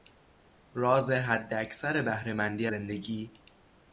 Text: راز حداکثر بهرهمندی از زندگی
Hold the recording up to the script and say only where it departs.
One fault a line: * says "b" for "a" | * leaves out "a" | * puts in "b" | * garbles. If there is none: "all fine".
* leaves out "از"